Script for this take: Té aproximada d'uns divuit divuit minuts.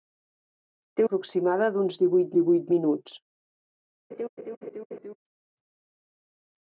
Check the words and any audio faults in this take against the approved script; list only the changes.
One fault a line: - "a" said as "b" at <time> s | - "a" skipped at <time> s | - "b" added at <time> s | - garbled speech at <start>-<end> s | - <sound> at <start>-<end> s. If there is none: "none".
- laugh at 4.1-5.2 s